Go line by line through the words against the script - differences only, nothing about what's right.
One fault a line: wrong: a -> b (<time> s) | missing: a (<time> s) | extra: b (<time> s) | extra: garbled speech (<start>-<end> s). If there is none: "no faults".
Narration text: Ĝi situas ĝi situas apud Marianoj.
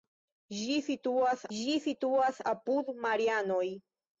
no faults